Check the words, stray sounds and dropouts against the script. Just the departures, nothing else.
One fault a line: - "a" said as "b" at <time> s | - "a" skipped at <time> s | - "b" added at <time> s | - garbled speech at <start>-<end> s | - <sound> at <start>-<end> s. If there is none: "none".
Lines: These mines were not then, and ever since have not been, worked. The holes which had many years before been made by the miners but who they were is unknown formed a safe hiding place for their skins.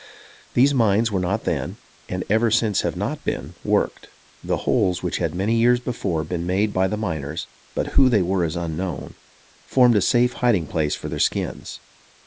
none